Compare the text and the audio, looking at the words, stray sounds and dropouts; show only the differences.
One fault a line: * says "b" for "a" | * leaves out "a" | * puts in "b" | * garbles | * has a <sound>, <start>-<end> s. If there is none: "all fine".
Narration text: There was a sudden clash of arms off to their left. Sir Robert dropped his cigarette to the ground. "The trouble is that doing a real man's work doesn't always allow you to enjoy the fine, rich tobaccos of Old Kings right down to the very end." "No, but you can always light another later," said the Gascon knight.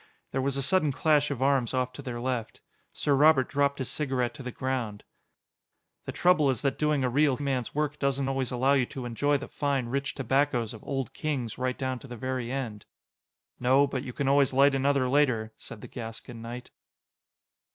all fine